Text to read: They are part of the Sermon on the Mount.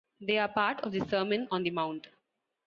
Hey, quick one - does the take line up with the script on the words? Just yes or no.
yes